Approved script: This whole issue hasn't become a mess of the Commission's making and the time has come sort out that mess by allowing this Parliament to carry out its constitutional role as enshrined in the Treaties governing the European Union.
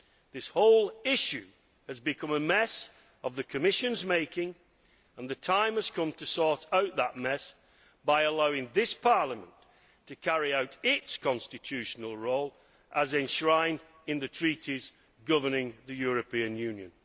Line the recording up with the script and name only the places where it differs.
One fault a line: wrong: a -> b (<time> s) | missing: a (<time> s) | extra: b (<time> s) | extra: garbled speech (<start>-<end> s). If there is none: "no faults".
wrong: hasn't -> has (1.9 s)
extra: to (6.1 s)